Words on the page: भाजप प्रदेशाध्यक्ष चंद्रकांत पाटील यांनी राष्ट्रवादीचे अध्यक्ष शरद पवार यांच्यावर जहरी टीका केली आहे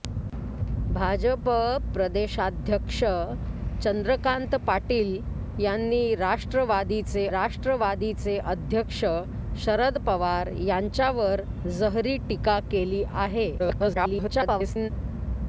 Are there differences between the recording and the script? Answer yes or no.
yes